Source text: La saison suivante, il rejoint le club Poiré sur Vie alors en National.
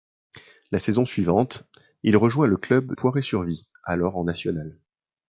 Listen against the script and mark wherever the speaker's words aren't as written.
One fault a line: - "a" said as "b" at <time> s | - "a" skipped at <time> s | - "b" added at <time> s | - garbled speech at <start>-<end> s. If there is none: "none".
none